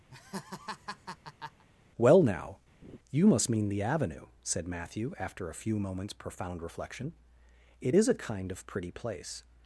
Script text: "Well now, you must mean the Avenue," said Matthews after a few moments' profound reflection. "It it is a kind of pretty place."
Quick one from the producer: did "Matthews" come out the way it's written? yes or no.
no